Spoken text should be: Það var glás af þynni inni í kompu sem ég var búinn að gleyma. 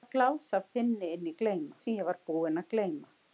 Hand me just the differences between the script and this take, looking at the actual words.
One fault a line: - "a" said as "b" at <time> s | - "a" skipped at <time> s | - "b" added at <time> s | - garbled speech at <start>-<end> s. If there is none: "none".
- "kompu" said as "gleyma" at 1.4 s